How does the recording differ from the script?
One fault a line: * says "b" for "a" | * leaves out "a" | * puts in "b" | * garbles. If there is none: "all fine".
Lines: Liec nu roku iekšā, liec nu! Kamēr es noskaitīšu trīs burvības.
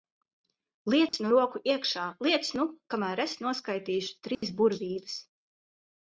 all fine